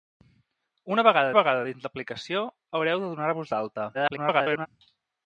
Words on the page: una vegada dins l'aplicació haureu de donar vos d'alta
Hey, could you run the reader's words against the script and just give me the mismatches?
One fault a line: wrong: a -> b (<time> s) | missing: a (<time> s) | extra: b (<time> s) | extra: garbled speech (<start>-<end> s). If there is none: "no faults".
extra: vegada (1.4 s)
extra: garbled speech (3.9-4.7 s)